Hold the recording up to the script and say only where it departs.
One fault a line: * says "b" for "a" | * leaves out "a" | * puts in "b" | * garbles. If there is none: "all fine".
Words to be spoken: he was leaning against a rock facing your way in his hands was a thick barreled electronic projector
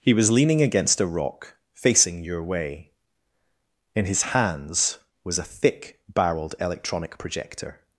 all fine